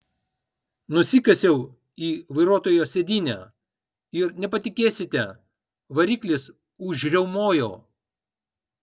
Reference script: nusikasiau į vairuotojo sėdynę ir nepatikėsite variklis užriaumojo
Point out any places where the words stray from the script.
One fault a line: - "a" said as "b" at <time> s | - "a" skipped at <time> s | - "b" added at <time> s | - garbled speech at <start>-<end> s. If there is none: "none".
none